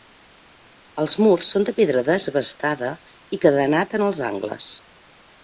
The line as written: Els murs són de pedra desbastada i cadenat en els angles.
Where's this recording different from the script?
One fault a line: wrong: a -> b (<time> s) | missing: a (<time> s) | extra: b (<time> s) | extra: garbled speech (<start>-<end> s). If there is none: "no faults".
no faults